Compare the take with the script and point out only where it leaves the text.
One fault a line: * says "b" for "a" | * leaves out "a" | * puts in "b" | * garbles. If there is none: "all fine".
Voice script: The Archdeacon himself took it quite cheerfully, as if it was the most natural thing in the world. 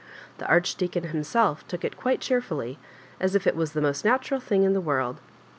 all fine